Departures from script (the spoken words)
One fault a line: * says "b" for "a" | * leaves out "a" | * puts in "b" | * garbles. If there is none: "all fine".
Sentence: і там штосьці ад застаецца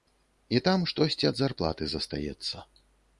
* puts in "зарплаты"